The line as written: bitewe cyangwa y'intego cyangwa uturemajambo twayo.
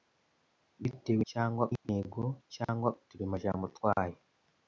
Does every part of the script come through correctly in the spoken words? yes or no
yes